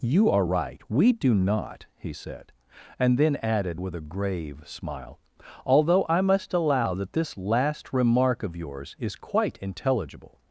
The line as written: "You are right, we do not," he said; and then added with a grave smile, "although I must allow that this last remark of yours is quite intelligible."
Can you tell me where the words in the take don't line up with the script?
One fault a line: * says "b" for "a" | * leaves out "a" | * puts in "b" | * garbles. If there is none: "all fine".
all fine